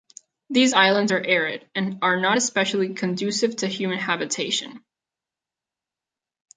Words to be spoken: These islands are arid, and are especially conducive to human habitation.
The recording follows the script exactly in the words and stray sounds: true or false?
false